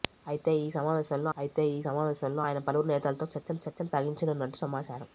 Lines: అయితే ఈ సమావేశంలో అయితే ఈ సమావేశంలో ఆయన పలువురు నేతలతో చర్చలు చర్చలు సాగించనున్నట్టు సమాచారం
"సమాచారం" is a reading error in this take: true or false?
false